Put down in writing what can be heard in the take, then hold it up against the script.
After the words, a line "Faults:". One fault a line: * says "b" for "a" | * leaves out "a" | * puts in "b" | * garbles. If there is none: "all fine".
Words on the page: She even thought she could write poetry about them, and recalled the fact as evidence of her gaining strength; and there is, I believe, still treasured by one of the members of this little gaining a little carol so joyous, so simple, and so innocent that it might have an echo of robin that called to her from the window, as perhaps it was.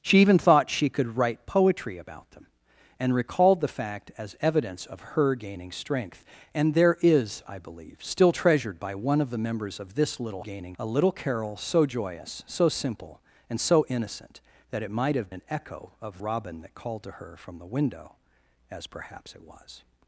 She even thought she could write poetry about them, and recalled the fact as evidence of her gaining strength; and there is, I believe, still treasured by one of the members of this little gaining a little carol so joyous, so simple, and so innocent that it might have an echo of robin that called to her from the window, as perhaps it was.
Faults:
all fine